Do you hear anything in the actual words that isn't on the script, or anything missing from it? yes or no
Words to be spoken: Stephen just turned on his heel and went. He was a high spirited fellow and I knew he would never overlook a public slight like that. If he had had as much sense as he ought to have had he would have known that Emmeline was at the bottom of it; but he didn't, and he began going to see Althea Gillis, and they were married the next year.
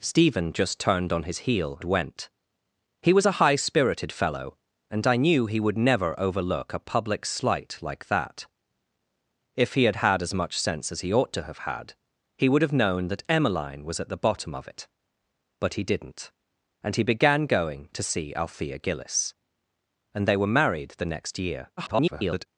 yes